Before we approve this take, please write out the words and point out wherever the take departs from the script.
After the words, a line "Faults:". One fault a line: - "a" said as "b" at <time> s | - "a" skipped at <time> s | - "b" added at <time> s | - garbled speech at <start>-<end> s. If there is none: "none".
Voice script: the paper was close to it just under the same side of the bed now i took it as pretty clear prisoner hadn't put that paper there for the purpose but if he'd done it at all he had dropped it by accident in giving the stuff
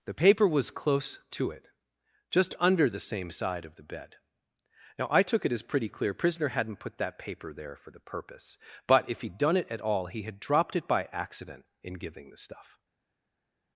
the paper was close to it just under the same side of the bed now i took it as pretty clear prisoner hadn't put that paper there for the purpose but if he'd done it at all he had dropped it by accident in giving the stuff
Faults:
none